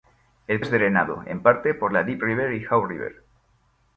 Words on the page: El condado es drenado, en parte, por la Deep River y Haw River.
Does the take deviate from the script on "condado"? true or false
true